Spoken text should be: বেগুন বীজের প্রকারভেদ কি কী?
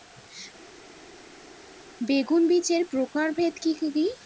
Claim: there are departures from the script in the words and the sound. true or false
false